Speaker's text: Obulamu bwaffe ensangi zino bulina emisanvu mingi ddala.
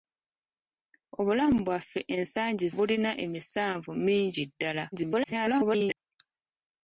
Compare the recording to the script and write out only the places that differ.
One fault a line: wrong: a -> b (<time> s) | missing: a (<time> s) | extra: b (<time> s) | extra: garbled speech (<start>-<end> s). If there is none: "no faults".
missing: zino (2.6 s)
extra: garbled speech (4.9-6.0 s)